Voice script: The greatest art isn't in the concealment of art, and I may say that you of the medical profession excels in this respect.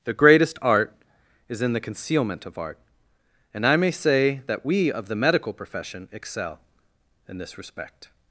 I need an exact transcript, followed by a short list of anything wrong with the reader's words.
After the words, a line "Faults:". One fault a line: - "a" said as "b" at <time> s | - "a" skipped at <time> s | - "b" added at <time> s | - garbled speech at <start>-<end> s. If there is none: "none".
The greatest art is in the concealment of art, and I may say that we of the medical profession excel in this respect.
Faults:
- "isn't" said as "is" at 1.5 s
- "you" said as "we" at 4.6 s
- "excels" said as "excel" at 6.1 s